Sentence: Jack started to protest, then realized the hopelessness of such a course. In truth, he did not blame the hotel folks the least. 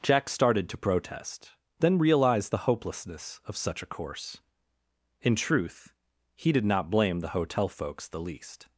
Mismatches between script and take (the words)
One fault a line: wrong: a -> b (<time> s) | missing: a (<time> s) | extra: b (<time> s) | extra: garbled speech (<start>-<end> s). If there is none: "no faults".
no faults